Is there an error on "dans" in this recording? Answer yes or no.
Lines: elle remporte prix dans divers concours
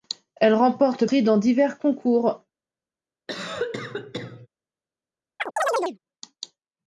no